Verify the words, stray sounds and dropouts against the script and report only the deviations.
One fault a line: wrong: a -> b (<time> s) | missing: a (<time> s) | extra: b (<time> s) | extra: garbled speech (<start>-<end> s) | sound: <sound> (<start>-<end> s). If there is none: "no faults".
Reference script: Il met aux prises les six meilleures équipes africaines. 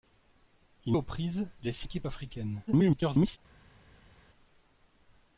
missing: met (1.0 s)
missing: meilleures (1.9 s)
extra: garbled speech (2.7-3.4 s)